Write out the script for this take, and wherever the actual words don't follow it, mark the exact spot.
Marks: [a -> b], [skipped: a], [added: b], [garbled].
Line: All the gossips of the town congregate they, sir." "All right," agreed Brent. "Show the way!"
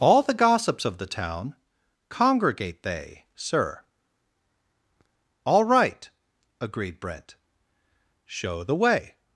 All the gossips of the town congregate they, sir." "All right," agreed Brent. "Show the way!"